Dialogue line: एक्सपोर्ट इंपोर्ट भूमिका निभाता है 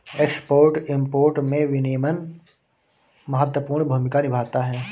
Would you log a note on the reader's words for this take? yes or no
yes